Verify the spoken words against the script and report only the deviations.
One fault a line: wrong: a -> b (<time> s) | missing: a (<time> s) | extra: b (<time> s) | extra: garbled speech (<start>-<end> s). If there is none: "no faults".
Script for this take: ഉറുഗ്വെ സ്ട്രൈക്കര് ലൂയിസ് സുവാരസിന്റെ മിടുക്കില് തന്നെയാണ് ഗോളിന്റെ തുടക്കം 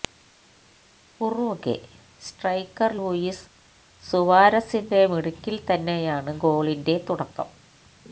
no faults